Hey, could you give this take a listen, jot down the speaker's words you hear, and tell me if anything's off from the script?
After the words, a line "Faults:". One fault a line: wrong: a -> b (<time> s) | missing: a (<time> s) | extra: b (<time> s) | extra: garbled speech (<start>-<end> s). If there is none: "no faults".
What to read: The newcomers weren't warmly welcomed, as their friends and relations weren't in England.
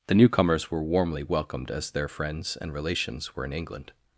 The newcomers were warmly welcomed, as their friends and relations were in England.
Faults:
wrong: weren't -> were (0.7 s)
wrong: weren't -> were (3.3 s)